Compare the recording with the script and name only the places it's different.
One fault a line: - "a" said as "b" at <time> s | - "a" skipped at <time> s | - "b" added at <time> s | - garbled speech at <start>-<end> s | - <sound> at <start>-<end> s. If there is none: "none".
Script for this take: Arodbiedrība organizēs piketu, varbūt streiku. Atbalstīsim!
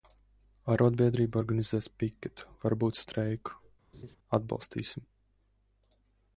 - laugh at 3.9-4.2 s